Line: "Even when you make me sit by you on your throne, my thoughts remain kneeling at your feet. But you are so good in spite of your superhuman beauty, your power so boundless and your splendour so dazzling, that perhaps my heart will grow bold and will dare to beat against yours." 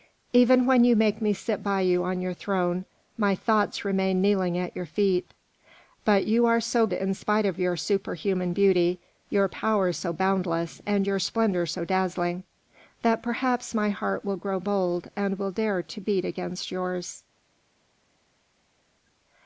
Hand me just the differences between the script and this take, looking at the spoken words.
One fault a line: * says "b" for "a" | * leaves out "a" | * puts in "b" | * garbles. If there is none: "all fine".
* leaves out "good"